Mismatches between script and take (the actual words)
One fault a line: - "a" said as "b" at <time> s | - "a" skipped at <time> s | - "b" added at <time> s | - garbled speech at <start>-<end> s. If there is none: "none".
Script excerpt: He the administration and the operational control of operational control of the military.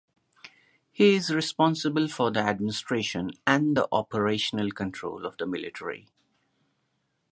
- "is responsible for" added at 1.1 s
- "operational control of" skipped at 5.4 s